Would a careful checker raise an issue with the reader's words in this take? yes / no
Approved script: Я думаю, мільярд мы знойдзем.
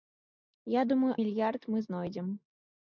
no